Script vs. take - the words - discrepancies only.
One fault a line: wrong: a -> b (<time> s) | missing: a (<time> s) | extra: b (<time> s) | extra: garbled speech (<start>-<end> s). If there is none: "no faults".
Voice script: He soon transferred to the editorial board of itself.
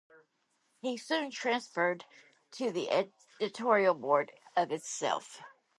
no faults